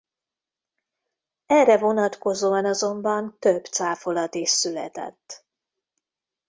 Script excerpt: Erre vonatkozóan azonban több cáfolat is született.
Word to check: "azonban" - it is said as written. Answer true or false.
true